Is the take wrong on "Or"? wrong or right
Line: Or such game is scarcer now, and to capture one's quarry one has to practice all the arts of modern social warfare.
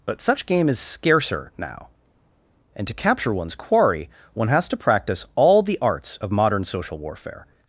wrong